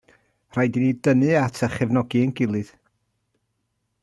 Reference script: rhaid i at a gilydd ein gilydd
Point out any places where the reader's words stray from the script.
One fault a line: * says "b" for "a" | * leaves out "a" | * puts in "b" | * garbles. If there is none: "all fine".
* puts in "ni dynnu"
* says "chefnogi" for "gilydd"